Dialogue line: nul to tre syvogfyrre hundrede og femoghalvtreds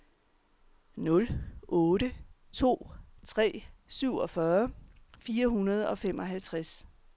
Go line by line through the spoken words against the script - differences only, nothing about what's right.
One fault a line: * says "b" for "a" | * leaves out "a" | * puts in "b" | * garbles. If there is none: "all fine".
* puts in "otte"
* puts in "fire"